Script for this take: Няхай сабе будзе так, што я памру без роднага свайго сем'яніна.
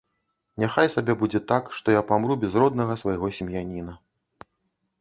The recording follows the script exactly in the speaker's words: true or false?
true